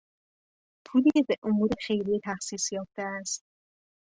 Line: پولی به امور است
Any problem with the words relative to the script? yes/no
yes